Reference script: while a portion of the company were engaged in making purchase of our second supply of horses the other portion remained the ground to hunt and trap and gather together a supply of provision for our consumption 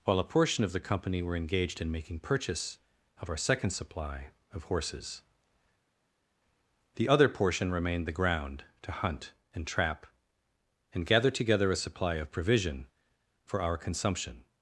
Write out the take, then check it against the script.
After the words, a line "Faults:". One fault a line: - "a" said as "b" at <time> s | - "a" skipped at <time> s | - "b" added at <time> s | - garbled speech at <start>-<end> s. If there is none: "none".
while a portion of the company were engaged in making purchase of our second supply of horses the other portion remained the ground to hunt and trap and gather together a supply of provision for our consumption
Faults:
none